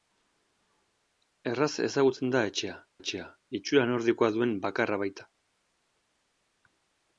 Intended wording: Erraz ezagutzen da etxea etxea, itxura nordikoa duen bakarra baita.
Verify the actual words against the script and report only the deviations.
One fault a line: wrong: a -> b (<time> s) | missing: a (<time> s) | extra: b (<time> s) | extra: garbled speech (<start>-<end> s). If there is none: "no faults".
no faults